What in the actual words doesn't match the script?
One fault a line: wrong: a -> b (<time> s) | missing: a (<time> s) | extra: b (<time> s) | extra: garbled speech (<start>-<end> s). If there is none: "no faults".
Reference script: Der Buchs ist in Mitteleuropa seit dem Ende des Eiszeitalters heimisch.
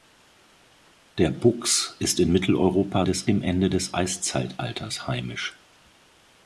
wrong: seit -> des (3.0 s)